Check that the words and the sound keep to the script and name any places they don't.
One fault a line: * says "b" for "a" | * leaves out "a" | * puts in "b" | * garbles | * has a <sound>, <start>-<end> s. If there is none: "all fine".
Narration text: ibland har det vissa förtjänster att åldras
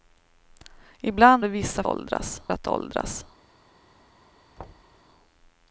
* leaves out "har"
* says "åldras" for "förtjänster"
* has a thud, 4.6-5.0 s